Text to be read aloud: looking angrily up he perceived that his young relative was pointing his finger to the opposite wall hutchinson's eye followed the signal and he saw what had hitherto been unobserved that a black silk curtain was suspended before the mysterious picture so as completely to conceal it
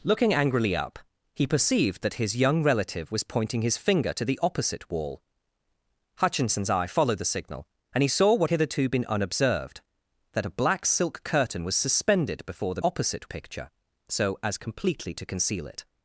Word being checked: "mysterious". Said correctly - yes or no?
no